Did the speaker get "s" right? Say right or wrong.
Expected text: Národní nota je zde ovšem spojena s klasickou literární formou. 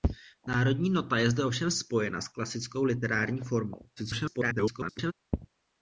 right